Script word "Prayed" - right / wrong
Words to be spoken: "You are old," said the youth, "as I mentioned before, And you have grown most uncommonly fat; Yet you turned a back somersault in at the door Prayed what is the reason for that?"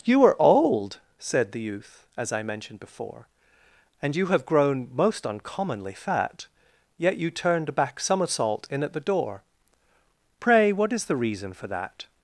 wrong